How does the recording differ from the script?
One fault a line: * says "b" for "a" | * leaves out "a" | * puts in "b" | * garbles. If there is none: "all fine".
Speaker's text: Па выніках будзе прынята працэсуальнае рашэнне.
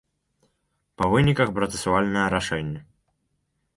* leaves out "будзе прынята"